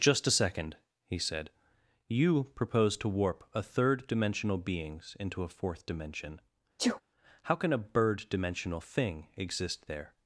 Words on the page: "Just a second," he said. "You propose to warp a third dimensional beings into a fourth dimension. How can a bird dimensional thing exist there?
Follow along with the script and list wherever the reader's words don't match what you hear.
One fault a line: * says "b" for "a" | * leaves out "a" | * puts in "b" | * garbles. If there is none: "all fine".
all fine